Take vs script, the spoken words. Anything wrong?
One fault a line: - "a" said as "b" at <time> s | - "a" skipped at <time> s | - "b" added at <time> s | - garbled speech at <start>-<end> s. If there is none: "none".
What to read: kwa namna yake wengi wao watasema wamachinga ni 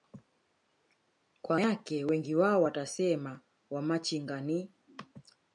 - "namna" skipped at 1.6 s